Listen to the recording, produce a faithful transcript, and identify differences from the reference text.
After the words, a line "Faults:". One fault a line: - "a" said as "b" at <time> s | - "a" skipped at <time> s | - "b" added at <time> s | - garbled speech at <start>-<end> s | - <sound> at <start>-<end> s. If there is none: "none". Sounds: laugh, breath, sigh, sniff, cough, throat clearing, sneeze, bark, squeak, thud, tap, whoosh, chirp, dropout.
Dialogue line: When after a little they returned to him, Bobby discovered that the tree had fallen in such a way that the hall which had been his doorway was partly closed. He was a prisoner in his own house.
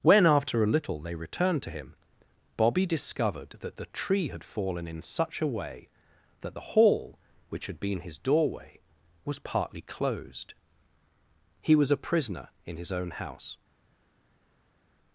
When after a little they returned to him, Bobby discovered that the tree had fallen in such a way that the hall which had been his doorway was partly closed. He was a prisoner in his own house.
Faults:
none